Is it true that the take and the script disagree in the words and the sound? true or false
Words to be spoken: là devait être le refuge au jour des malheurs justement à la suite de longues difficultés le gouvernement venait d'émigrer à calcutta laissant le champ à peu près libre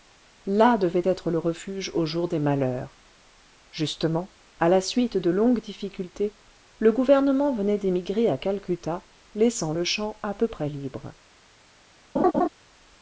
true